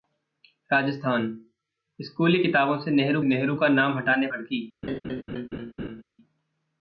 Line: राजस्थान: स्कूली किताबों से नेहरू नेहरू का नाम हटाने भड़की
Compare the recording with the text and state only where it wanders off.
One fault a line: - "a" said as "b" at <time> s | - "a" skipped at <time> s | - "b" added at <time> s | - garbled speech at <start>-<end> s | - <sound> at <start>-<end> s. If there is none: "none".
- laugh at 4.8-6.0 s